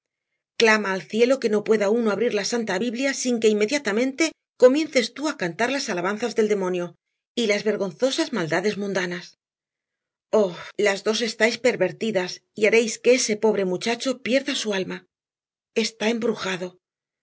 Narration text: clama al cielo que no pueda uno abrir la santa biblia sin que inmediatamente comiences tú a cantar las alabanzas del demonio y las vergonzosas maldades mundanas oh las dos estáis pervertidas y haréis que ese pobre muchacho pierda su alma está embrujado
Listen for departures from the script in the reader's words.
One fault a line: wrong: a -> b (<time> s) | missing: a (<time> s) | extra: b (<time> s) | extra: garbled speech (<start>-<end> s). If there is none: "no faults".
no faults